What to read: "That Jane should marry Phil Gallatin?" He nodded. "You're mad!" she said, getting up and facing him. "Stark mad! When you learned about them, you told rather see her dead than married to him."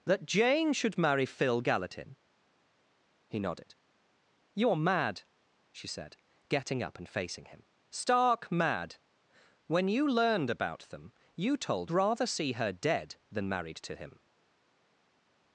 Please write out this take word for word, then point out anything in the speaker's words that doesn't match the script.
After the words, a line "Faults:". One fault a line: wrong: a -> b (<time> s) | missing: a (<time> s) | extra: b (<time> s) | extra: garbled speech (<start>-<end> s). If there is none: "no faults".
"That Jane should marry Phil Gallatin?" He nodded. "You're mad!" she said, getting up and facing him. "Stark mad! When you learned about them, you told rather see her dead than married to him."
Faults:
no faults